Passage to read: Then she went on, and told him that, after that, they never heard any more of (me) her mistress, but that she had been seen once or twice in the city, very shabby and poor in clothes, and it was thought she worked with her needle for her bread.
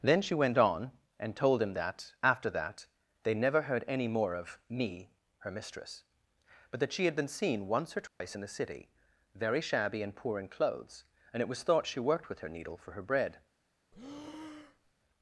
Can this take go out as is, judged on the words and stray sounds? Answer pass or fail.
fail